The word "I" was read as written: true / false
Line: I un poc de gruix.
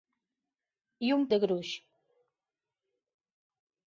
true